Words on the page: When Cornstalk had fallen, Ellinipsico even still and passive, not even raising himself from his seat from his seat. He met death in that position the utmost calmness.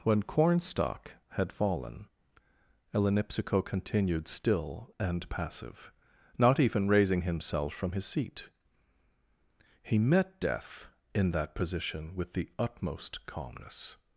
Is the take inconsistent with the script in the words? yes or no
yes